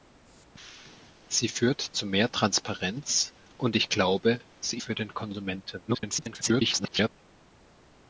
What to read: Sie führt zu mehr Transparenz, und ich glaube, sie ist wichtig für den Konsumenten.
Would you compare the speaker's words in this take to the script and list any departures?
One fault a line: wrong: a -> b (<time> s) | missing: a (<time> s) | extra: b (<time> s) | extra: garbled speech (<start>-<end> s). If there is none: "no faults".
missing: ist wichtig (4.8 s)
extra: garbled speech (5.9-7.1 s)